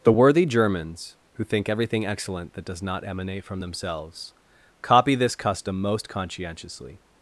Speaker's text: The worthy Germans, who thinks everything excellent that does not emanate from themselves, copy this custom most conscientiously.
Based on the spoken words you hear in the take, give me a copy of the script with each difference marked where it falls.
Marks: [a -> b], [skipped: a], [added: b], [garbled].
The worthy Germans, who [thinks -> think] everything excellent that does not emanate from themselves, copy this custom most conscientiously.